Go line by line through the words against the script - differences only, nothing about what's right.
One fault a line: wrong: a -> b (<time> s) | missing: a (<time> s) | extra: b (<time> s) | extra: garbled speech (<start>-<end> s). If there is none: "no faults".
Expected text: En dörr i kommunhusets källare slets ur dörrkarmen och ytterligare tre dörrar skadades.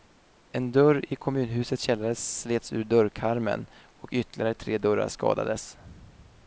no faults